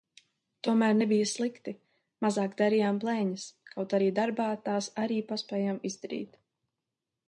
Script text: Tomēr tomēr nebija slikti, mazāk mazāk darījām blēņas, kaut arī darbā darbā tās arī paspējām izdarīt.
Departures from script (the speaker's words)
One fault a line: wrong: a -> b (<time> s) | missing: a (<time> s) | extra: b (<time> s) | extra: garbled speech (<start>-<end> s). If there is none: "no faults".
missing: tomēr (0.9 s)
missing: mazāk (2.5 s)
missing: darbā (4.5 s)